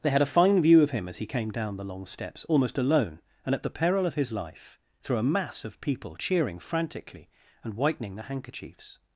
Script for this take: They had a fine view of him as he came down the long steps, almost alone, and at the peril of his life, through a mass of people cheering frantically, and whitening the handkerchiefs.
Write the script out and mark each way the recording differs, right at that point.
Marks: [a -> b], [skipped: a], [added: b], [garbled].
They had a fine view of him as he came down the long steps, almost alone, and at the peril of his life, through a mass of people cheering frantically, and whitening the handkerchiefs.